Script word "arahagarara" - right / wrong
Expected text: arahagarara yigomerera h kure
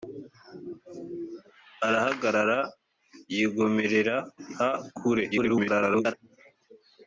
right